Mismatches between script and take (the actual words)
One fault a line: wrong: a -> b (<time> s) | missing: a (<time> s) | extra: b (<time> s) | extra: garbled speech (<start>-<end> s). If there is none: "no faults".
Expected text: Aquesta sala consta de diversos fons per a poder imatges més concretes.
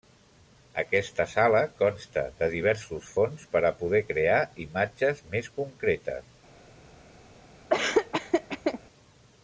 extra: crear (4.1 s)